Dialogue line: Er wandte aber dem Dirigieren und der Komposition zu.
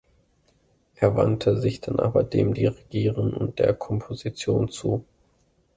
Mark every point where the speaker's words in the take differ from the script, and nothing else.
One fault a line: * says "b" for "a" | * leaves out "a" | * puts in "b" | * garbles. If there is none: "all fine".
* puts in "sich dann"